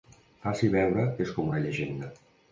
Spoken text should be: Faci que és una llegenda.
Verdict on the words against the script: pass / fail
fail